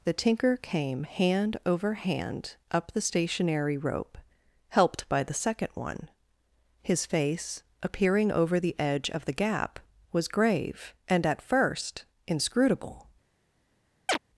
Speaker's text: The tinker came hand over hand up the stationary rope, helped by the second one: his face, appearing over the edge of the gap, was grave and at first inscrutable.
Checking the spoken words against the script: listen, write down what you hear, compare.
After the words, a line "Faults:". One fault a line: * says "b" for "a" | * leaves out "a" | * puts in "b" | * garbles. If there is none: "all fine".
The tinker came hand over hand up the stationary rope, helped by the second one: his face, appearing over the edge of the gap, was grave and at first inscrutable.
Faults:
all fine